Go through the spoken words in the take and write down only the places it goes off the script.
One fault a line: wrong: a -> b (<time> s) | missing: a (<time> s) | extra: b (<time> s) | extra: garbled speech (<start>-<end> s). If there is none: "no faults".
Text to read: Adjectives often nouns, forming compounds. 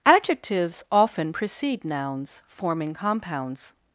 extra: precede (1.3 s)